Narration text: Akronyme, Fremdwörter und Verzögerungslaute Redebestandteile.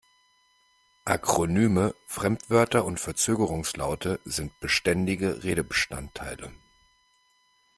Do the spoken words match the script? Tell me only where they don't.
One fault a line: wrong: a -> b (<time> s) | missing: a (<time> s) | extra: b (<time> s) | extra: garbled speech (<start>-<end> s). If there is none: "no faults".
extra: sind beständige (4.2 s)